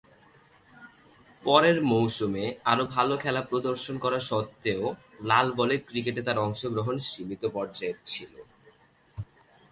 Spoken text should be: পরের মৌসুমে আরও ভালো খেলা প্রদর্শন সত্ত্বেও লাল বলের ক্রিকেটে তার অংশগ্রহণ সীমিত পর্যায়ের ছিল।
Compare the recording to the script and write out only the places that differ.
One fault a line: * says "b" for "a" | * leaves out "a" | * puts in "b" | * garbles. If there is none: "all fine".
* puts in "করা"